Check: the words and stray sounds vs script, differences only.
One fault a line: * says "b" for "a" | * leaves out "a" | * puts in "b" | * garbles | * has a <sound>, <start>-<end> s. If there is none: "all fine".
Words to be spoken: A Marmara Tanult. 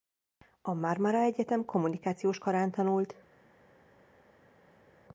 * puts in "Egyetem kommunikációs karán"